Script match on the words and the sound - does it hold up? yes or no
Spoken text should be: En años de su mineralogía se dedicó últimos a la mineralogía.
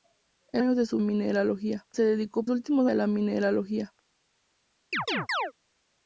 no